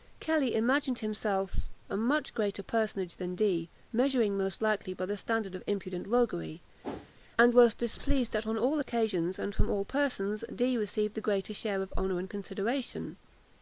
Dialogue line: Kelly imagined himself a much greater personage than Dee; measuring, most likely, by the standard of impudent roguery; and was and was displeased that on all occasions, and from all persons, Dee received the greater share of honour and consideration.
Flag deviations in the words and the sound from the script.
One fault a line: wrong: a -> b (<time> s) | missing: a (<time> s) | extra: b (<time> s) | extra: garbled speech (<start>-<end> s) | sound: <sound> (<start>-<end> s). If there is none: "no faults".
sound: whoosh (6.8-7.1 s)
missing: and was (7.7 s)